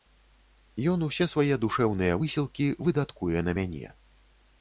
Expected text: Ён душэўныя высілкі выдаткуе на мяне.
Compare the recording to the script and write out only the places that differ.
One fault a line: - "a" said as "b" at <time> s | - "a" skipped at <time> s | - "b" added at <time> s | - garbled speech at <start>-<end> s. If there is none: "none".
- "усе свае" added at 1.1 s